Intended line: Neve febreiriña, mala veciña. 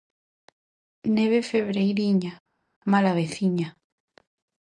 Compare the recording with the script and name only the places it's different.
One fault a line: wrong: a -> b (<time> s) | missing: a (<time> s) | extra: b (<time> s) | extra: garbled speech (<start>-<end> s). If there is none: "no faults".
no faults